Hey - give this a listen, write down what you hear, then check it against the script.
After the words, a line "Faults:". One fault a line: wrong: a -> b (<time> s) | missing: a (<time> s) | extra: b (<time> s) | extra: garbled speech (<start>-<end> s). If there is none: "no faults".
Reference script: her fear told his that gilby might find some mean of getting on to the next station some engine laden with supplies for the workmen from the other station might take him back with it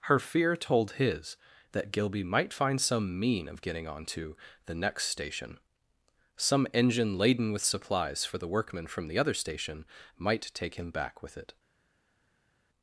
her fear told his that gilby might find some mean of getting on to the next station some engine laden with supplies for the workmen from the other station might take him back with it
Faults:
no faults